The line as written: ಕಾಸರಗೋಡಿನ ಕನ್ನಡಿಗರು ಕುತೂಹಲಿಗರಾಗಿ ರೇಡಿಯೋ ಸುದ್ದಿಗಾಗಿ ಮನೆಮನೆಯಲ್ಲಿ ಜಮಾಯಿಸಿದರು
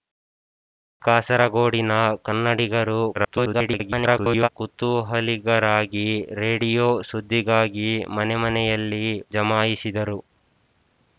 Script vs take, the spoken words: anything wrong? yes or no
yes